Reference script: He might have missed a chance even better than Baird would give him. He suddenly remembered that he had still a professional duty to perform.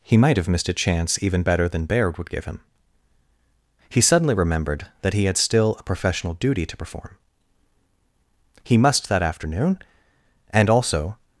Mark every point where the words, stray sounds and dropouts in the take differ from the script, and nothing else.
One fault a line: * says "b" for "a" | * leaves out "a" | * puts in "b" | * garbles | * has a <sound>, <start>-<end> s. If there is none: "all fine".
* puts in "He must that afternoon and also"